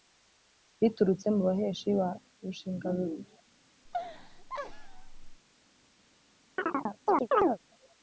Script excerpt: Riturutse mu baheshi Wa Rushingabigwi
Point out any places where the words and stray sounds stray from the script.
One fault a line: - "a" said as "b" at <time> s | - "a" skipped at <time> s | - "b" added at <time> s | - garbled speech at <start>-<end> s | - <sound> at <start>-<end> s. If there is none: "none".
- laugh at 3.9-5.4 s
- chirp at 6.6-7.6 s